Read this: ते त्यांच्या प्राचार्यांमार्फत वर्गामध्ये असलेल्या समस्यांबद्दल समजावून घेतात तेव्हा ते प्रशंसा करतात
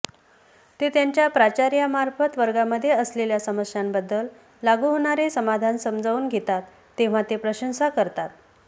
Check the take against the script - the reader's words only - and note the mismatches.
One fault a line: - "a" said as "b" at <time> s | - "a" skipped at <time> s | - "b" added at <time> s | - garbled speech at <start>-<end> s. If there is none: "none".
- "लागू होणारे समाधान" added at 4.6 s